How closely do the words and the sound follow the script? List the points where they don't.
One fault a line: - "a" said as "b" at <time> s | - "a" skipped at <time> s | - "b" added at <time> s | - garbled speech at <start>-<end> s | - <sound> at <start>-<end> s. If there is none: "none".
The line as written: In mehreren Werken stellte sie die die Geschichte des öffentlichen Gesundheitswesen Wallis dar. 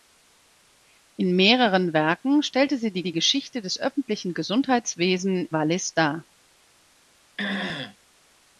- throat clearing at 7.4-8.0 s